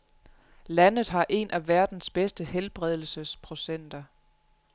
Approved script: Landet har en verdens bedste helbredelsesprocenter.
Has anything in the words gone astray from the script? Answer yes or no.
yes